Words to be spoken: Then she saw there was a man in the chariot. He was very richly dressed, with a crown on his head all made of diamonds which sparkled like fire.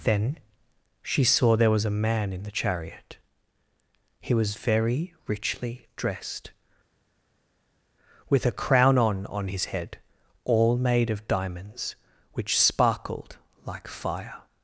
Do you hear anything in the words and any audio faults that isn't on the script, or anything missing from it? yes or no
yes